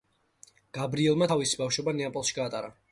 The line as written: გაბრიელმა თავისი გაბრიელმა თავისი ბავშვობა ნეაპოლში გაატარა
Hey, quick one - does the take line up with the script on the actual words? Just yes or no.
no